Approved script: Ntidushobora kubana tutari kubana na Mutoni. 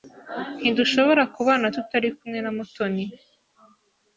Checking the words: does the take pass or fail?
fail